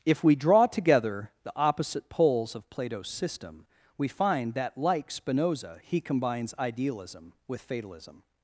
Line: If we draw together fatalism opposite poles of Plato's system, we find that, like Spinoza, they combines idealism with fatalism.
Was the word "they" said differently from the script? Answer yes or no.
yes